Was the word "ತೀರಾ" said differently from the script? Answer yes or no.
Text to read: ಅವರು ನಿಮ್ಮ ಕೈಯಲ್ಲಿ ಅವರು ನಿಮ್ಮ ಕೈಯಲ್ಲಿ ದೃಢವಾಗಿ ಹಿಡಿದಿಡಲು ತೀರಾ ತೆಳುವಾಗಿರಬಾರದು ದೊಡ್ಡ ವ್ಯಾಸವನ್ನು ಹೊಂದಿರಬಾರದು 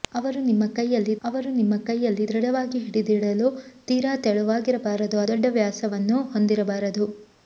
no